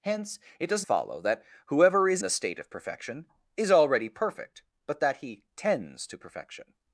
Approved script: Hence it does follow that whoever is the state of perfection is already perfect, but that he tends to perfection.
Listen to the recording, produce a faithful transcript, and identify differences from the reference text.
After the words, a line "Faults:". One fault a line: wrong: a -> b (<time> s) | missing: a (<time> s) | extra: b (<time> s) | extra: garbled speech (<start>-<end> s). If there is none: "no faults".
Hence it does follow that whoever is the state of perfection is already perfect, but that he tends to perfection.
Faults:
no faults